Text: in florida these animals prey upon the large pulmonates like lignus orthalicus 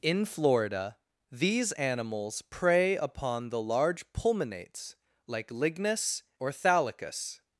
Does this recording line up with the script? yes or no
yes